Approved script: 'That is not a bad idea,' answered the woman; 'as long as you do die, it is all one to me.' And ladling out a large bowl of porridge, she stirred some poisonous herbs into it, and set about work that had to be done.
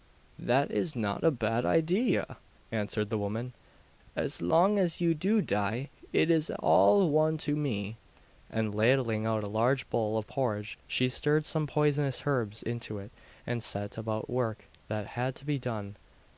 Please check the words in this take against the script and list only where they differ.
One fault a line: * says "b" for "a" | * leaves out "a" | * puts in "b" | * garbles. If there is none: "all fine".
all fine